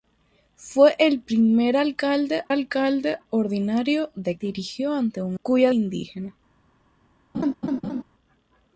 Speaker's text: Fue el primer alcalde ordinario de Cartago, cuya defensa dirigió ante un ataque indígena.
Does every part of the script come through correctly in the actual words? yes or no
no